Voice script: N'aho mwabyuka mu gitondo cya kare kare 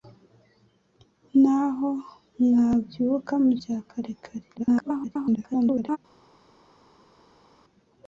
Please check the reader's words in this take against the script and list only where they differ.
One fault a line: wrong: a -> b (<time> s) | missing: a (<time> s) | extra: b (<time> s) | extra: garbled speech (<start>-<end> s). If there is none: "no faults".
missing: gitondo (3.5 s)
extra: garbled speech (4.6-6.0 s)